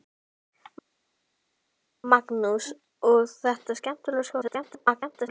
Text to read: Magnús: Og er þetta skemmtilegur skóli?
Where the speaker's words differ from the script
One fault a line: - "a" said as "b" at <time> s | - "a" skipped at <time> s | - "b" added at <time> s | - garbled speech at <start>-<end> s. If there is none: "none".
- garbled speech at 4.4-5.3 s